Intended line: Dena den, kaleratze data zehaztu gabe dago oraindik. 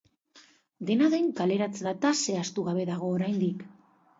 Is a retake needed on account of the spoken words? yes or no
no